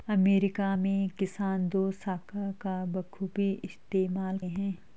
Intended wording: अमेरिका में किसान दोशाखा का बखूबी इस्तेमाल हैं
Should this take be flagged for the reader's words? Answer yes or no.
no